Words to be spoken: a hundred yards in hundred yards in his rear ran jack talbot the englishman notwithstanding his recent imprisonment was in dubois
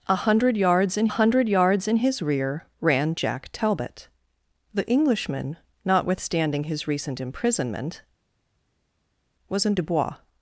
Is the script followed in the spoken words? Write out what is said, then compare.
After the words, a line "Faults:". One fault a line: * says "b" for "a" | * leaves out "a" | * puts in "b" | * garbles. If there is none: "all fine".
a hundred yards in hundred yards in his rear ran jack talbot the englishman notwithstanding his recent imprisonment was in dubois
Faults:
all fine